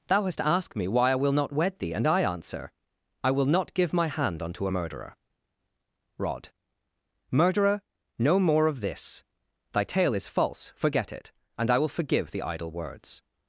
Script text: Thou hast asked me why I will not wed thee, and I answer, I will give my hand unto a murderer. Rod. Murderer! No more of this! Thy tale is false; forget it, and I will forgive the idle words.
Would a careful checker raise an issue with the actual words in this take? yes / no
yes